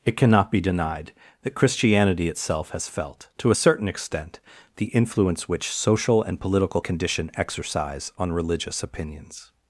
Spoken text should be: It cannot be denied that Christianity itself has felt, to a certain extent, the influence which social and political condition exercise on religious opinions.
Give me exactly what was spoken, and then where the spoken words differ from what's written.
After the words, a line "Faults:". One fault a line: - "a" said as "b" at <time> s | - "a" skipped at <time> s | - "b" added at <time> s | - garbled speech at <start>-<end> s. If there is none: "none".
It cannot be denied that Christianity itself has felt, to a certain extent, the influence which social and political condition exercise on religious opinions.
Faults:
none